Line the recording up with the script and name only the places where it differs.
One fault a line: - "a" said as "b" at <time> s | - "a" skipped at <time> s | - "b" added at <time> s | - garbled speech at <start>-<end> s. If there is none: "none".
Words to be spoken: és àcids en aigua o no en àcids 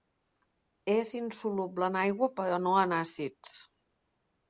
- "àcids" said as "insoluble" at 1.2 s
- "o" said as "però" at 2.4 s